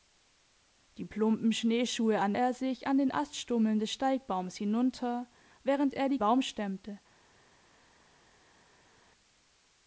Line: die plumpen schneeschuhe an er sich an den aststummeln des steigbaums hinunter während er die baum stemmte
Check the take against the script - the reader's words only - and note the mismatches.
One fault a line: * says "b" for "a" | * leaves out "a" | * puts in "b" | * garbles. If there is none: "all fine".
all fine